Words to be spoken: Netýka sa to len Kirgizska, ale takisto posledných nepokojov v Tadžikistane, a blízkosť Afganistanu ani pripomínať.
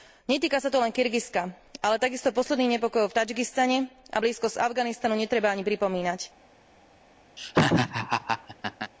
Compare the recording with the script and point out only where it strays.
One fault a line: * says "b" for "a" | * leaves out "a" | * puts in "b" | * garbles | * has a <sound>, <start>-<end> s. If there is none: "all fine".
* puts in "netreba"
* has a laugh, 7.4-8.9 s